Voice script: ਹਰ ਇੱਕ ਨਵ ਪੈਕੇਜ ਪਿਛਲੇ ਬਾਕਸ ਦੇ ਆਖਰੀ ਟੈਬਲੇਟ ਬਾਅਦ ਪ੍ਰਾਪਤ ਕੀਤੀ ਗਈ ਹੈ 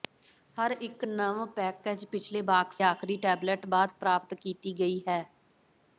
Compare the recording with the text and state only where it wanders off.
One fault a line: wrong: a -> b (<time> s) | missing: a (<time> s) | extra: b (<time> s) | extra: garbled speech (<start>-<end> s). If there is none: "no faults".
missing: ਦੇ (2.8 s)